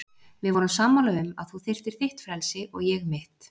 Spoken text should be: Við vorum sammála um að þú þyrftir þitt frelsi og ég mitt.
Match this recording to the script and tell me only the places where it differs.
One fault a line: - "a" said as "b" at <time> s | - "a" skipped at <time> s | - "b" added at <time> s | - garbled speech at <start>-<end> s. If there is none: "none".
none